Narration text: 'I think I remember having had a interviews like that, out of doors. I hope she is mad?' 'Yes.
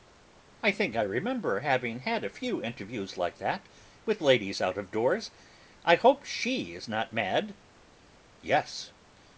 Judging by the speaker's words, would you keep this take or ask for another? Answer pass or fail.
fail